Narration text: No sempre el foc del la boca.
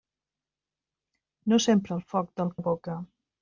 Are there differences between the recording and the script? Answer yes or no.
no